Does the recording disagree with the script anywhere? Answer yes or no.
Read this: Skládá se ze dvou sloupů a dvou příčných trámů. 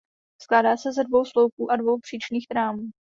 no